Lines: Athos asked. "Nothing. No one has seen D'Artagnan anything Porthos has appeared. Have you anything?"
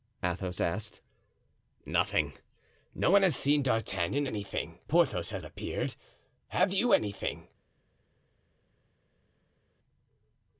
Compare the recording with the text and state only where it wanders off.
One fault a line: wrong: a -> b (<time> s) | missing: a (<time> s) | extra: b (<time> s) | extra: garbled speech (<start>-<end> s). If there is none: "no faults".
no faults